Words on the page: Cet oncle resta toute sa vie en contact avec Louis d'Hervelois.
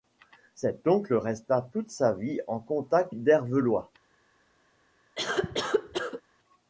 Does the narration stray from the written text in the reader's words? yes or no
yes